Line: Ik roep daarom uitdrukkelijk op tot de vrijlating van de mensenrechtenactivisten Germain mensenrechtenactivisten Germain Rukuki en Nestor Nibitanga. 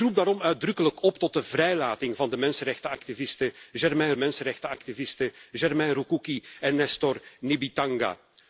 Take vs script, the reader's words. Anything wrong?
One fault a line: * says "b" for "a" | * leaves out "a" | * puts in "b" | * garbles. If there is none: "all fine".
all fine